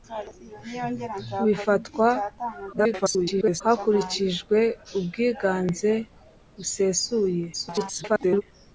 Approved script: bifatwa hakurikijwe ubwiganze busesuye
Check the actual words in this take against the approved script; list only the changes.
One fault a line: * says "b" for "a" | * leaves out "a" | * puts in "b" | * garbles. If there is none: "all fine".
* garbles
* garbles